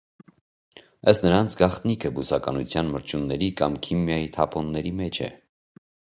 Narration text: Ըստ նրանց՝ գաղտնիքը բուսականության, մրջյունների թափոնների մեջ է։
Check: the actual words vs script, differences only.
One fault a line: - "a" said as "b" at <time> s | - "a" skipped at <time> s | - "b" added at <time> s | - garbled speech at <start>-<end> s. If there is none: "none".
- "կամ քիմիայի" added at 3.6 s